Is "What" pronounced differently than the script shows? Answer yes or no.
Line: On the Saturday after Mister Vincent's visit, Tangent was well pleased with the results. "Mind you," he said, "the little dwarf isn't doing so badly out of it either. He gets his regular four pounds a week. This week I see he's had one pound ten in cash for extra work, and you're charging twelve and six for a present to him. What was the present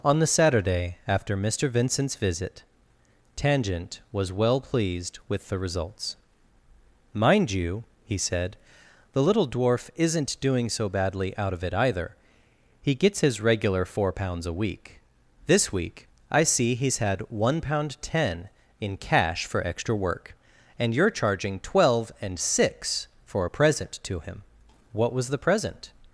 no